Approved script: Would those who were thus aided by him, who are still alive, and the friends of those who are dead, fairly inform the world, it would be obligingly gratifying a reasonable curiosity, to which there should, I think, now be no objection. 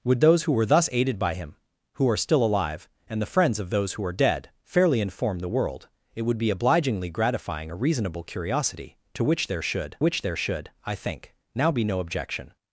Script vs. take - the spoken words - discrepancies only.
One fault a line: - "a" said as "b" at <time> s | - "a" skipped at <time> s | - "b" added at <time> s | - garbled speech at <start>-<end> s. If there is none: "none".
- "which there should" added at 10.0 s